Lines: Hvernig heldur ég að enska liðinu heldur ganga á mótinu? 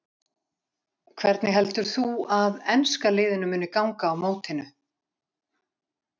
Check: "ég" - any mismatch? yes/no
yes